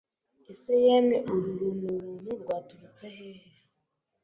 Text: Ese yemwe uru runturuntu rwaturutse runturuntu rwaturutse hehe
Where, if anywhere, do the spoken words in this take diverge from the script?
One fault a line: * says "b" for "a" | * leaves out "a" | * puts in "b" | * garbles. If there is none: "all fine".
* leaves out "runturuntu rwaturutse"